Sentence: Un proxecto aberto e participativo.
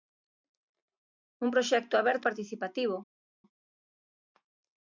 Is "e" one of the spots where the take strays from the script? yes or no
yes